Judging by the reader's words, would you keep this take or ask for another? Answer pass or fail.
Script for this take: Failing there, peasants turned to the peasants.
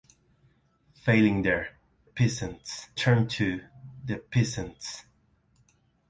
pass